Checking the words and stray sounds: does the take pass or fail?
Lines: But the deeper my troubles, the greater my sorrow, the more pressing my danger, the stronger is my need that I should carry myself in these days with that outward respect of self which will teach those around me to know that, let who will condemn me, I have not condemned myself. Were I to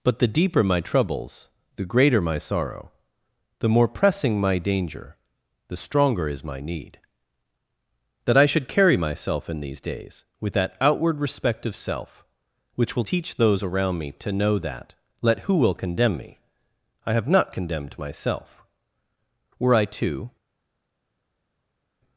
pass